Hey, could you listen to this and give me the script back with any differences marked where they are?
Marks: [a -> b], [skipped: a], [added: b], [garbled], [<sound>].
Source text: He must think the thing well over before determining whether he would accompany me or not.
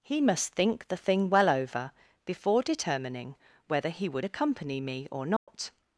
He must think the thing well over before determining whether he would accompany me or not. [dropout]